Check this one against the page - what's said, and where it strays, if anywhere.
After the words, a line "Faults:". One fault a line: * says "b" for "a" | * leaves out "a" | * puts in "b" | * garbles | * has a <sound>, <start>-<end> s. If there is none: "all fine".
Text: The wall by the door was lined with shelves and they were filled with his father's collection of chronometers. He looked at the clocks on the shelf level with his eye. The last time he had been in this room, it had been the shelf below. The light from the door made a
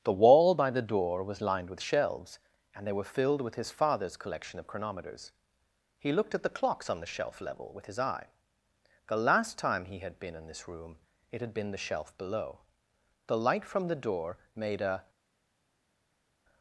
The wall by the door was lined with shelves and they were filled with his father's collection of chronometers. He looked at the clocks on the shelf level with his eye. The last time he had been in this room, it had been the shelf below. The light from the door made a
Faults:
all fine